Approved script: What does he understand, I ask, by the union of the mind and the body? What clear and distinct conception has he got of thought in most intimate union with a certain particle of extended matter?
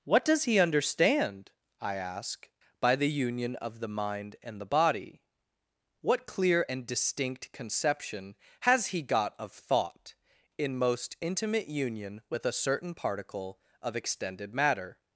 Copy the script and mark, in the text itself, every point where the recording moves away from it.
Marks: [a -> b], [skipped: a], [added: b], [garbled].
What does he understand, I ask, by the union of the mind and the body? What clear and distinct conception has he got of thought in most intimate union with a certain particle of extended matter?